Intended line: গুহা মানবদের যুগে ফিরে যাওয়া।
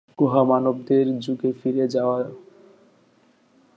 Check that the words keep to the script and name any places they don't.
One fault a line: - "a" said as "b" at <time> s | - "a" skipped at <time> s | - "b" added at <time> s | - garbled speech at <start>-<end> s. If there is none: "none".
none